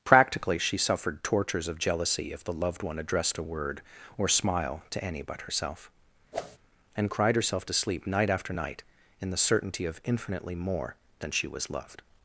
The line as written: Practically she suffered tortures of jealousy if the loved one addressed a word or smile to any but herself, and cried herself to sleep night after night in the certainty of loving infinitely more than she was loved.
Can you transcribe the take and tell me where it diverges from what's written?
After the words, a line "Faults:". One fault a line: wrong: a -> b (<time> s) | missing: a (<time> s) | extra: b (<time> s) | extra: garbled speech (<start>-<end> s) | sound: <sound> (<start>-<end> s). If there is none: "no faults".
Practically she suffered tortures of jealousy if the loved one addressed a word or smile to any but herself, and cried herself to sleep night after night in the certainty of infinitely more than she was loved.
Faults:
sound: whoosh (6.3-6.6 s)
missing: loving (10.0 s)